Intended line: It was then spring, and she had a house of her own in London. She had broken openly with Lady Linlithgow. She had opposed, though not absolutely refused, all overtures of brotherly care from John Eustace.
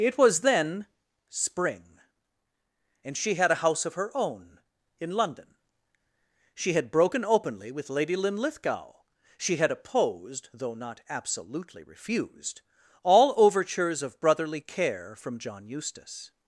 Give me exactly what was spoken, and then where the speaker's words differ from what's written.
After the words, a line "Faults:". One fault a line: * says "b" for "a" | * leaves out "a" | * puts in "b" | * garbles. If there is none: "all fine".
It was then spring, and she had a house of her own in London. She had broken openly with Lady Linlithgow. She had opposed, though not absolutely refused, all overtures of brotherly care from John Eustace.
Faults:
all fine